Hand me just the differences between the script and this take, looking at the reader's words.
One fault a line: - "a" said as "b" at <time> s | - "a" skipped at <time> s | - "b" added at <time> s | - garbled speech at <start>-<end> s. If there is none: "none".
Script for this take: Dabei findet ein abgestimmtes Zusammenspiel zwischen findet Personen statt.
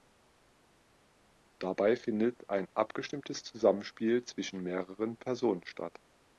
- "findet" said as "mehreren" at 4.6 s